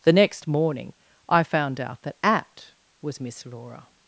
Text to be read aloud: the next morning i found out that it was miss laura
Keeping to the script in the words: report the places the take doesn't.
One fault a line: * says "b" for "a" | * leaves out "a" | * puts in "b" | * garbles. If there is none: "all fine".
* says "at" for "it"